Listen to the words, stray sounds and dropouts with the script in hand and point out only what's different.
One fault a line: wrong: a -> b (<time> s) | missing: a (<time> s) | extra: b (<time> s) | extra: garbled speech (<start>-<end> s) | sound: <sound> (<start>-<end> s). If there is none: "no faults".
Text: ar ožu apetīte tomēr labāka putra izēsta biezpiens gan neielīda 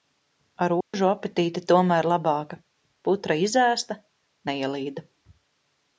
sound: dropout (0.8-0.9 s)
missing: biezpiens gan (4.0 s)